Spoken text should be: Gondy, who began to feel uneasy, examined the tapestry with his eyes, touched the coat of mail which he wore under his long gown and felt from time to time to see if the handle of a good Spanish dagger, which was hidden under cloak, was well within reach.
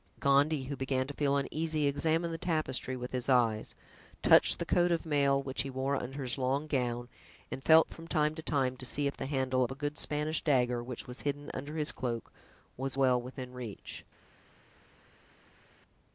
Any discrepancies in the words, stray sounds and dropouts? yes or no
yes